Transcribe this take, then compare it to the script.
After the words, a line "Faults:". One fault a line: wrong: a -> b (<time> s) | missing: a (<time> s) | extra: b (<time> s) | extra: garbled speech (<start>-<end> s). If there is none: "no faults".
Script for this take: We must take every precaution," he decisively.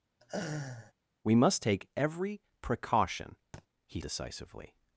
We must take every precaution," he decisively.
Faults:
no faults